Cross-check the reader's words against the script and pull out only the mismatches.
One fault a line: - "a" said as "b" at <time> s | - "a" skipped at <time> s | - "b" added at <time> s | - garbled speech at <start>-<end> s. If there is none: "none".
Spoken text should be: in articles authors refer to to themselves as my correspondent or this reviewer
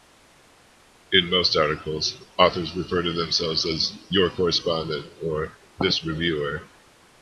- "most" added at 1.3 s
- "to" skipped at 3.1 s
- "my" said as "your" at 4.1 s